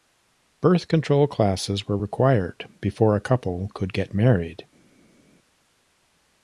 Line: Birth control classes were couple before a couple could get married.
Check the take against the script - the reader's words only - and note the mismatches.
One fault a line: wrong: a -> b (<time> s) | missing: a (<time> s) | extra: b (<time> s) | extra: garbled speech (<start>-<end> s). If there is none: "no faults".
wrong: couple -> required (2.0 s)